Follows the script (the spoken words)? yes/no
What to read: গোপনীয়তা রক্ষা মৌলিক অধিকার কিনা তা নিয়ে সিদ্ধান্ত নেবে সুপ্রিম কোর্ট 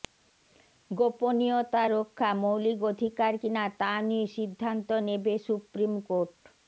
yes